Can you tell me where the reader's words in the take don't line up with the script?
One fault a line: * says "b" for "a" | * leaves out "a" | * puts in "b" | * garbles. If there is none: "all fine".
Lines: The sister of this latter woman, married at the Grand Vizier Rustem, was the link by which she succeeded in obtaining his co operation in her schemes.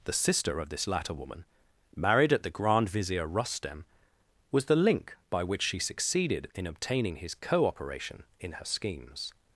all fine